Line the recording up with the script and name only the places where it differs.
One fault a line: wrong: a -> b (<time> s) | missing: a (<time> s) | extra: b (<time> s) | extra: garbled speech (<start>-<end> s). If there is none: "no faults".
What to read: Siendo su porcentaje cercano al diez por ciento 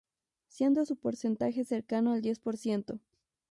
no faults